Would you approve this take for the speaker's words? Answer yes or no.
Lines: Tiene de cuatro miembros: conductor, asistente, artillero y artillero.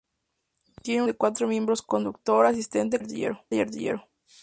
yes